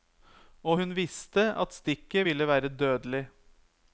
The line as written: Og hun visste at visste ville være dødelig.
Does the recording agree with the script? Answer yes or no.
no